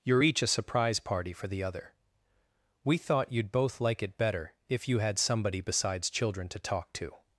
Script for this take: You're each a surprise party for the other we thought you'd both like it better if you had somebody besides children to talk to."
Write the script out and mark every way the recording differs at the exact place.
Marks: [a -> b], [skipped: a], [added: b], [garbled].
You're each a surprise party for the other we thought you'd both like it better if you had somebody besides children to talk to."